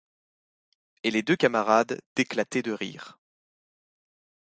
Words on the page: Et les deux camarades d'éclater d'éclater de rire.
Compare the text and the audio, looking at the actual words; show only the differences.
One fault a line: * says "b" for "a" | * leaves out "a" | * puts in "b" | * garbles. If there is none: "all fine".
* leaves out "d'éclater"